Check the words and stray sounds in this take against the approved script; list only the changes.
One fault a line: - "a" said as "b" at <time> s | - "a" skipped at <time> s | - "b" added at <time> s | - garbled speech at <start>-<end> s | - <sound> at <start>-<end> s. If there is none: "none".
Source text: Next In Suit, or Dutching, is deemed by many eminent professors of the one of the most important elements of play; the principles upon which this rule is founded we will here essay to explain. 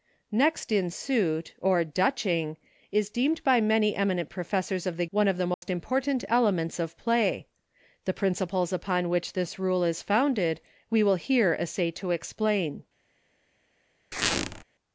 - dropout at 5.5-5.6 s
- squeak at 14.1-14.6 s